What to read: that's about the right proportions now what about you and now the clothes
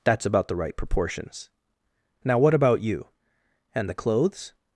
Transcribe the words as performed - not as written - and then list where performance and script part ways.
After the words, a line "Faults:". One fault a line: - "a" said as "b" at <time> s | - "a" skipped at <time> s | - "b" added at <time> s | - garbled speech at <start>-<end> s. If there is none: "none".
that's about the right proportions now what about you and the clothes
Faults:
- "now" skipped at 3.9 s